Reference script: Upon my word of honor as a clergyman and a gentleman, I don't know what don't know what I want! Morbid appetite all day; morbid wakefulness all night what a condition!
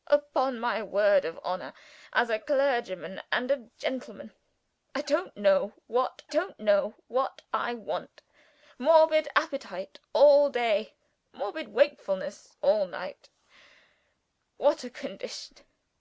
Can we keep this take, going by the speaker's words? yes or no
yes